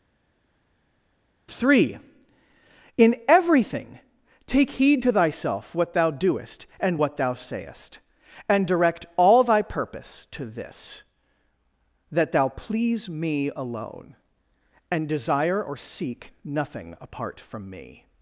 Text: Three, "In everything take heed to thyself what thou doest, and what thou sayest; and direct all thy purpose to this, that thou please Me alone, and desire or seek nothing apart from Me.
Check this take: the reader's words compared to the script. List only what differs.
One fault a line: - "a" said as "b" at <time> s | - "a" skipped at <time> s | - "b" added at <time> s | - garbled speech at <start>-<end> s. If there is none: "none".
none